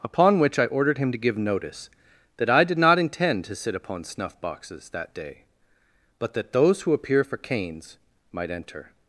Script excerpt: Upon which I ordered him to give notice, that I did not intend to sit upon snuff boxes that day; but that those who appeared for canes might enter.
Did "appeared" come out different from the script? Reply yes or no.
yes